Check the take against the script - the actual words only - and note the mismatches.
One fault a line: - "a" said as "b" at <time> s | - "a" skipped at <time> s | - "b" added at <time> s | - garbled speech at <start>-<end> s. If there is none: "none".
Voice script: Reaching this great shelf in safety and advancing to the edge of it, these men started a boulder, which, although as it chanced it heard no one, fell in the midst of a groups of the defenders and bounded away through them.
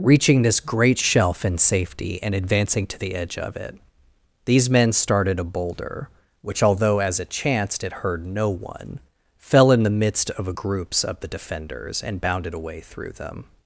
none